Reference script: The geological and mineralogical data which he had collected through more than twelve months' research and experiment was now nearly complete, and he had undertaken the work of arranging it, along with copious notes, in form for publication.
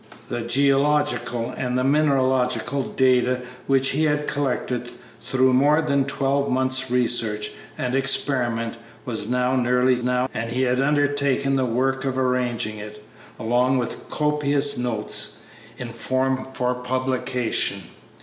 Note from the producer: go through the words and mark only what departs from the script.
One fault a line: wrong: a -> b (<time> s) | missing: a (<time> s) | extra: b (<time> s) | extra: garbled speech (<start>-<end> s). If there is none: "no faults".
wrong: complete -> now (10.0 s)